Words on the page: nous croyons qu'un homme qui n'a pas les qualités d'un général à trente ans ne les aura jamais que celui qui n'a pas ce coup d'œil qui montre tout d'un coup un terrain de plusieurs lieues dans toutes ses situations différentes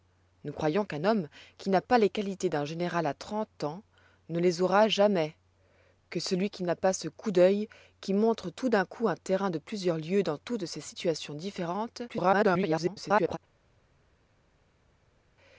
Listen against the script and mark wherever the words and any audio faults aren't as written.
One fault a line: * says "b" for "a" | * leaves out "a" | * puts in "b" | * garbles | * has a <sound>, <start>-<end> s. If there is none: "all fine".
* garbles